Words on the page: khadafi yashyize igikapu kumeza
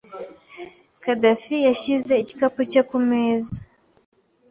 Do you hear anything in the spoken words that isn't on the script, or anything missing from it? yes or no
yes